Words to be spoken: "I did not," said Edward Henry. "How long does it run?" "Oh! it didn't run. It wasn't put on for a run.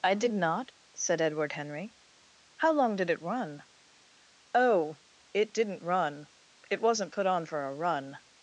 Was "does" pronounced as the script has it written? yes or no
no